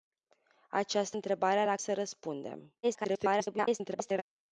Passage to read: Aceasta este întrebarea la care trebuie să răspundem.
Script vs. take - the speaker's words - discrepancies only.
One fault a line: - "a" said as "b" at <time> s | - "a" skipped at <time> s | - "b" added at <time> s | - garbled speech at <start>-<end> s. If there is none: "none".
- "este" skipped at 1.2 s
- "care trebuie" skipped at 1.8 s
- garbled speech at 2.8-4.2 s